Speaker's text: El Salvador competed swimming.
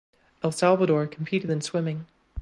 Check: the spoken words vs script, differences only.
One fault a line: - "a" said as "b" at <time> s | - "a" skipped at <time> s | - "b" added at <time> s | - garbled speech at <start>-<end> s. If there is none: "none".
- "in" added at 1.5 s